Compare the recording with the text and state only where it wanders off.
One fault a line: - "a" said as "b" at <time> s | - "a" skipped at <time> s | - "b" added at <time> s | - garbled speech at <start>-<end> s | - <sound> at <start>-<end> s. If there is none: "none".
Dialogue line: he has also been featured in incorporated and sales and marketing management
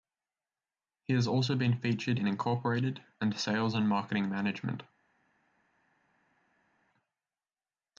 none